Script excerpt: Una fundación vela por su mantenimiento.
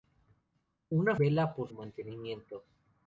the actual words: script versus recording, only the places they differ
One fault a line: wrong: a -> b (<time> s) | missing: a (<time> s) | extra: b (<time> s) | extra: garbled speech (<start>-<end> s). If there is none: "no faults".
missing: fundación (1.1 s)
missing: su (1.7 s)